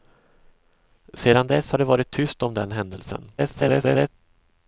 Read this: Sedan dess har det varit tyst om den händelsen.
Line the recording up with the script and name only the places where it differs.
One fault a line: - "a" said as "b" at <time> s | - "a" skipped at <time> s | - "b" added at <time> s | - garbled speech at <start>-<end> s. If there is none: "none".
- garbled speech at 3.4-4.1 s